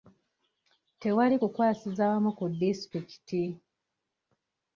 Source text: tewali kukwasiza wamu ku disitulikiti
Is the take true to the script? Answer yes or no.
yes